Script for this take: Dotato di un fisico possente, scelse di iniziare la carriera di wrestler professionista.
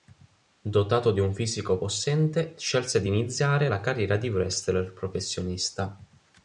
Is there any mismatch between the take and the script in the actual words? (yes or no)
no